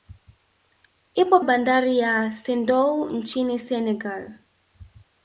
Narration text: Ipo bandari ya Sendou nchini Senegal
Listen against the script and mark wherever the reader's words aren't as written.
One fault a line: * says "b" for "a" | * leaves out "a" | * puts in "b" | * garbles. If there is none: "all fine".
all fine